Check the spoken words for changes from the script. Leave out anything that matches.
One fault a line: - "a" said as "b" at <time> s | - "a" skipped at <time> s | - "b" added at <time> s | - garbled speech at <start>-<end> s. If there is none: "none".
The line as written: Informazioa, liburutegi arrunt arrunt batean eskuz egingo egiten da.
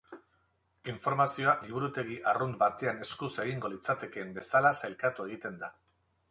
- "arrunt" skipped at 2.6 s
- "litzatekeen bezala sailkatu" added at 3.8 s